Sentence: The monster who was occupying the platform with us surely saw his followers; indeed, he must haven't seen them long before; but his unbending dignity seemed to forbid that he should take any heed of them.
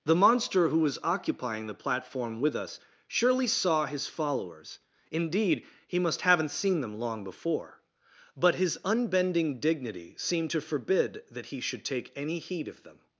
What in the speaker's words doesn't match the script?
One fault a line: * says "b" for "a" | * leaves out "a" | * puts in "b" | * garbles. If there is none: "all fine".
all fine